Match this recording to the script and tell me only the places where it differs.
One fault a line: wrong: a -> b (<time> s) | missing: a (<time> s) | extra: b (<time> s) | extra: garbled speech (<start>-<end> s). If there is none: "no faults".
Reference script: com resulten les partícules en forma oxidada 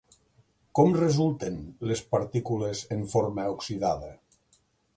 no faults